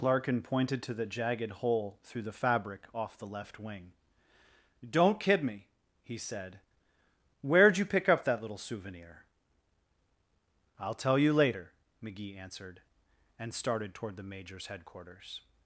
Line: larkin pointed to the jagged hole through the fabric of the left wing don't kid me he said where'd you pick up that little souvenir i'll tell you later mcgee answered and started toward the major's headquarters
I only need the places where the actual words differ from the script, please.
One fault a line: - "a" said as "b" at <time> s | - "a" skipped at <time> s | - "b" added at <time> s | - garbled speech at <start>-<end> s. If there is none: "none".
- "of" said as "off" at 2.9 s